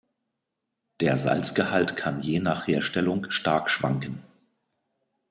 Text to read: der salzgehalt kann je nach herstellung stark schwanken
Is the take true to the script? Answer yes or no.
yes